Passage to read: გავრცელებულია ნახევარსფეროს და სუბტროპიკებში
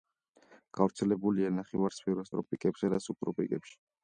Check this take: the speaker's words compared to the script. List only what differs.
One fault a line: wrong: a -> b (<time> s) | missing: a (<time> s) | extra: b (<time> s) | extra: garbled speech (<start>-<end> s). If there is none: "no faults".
extra: ტროპიკებსა (2.4 s)